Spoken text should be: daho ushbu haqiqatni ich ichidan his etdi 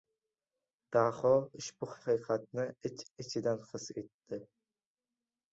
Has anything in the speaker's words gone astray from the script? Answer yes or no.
no